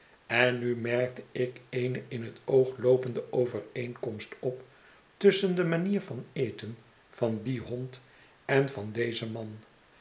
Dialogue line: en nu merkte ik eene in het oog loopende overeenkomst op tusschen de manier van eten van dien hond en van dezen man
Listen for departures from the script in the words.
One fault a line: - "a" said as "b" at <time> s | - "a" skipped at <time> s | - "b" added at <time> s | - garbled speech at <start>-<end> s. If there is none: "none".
none